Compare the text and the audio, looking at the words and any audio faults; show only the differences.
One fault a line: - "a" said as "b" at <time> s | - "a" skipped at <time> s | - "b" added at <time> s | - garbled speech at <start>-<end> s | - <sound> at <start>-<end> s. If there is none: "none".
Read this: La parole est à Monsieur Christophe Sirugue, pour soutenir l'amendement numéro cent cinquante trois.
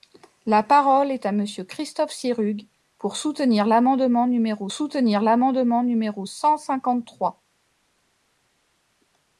- "soutenir l'amendement numéro" added at 4.7 s